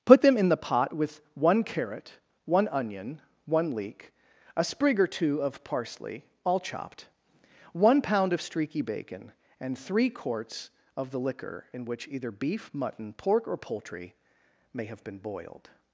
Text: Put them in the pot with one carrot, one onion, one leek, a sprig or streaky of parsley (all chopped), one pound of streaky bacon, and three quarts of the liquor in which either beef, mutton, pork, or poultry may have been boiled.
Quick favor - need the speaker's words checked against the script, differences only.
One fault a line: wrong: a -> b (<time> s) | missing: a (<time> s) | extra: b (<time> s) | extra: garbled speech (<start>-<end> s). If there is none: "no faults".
wrong: streaky -> two (5.1 s)